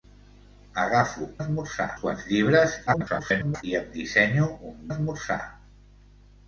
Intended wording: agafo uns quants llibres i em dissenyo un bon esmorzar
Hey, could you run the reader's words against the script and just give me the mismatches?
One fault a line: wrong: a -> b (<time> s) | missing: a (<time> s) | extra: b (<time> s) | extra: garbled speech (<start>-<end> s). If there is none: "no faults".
wrong: uns -> esmorzar (1.4 s)
extra: garbled speech (2.9-3.6 s)
missing: bon (4.8 s)